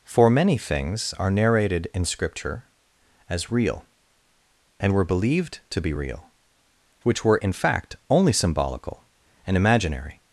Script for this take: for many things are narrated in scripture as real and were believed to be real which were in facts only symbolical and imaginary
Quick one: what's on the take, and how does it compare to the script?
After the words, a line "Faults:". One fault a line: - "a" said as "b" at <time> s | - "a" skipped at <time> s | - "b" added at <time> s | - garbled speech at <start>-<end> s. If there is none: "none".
for many things are narrated in scripture as real and were believed to be real which were in fact only symbolical and imaginary
Faults:
- "facts" said as "fact" at 7.5 s